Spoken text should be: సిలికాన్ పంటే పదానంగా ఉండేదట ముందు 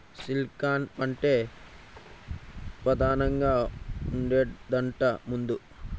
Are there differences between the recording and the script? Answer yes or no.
no